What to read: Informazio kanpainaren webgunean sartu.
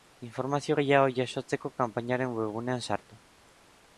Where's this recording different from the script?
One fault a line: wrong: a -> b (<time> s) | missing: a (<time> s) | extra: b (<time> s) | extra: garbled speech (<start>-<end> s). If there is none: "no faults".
extra: gehiago jasotzeko (0.8 s)